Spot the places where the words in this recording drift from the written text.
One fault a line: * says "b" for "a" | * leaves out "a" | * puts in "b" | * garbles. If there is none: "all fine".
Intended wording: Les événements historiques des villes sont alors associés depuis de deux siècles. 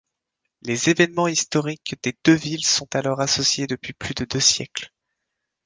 * puts in "deux"
* puts in "plus"